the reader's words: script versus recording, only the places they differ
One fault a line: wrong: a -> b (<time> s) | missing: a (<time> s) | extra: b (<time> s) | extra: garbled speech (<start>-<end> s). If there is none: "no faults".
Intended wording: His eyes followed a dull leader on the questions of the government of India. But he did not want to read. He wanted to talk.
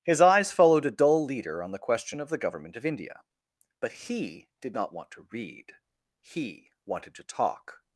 wrong: questions -> question (1.8 s)